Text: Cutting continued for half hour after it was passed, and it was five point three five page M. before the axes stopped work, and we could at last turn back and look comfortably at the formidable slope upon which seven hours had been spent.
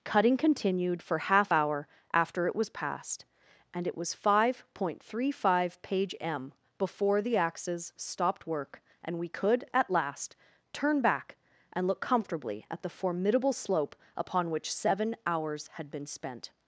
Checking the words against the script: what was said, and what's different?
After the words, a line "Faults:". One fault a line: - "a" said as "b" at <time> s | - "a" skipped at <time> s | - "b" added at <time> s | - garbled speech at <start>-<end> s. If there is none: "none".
Cutting continued for half hour after it was passed, and it was five point three five page M. before the axes stopped work, and we could at last turn back and look comfortably at the formidable slope upon which seven hours had been spent.
Faults:
none